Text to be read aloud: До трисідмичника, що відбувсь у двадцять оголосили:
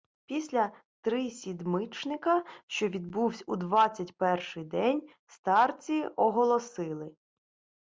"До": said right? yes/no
no